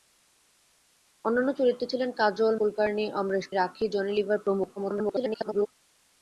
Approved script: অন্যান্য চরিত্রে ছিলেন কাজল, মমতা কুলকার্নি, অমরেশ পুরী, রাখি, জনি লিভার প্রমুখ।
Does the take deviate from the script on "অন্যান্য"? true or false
false